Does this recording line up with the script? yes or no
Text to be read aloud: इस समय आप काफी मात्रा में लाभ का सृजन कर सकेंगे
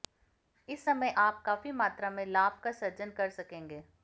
yes